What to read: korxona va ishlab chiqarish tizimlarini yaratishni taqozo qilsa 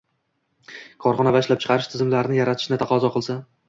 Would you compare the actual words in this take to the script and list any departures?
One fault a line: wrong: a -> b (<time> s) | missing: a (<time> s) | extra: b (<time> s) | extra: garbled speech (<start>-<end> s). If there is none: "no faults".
no faults